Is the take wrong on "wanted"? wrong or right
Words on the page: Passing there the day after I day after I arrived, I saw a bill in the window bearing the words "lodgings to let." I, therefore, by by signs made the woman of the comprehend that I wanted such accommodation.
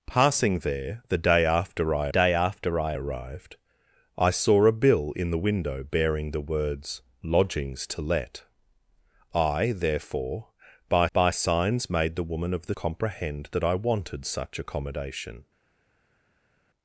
right